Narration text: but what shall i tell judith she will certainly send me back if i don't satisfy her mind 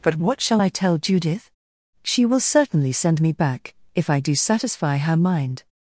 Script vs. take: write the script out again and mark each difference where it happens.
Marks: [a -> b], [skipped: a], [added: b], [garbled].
but what shall i tell judith she will certainly send me back if i [don't -> do] satisfy her mind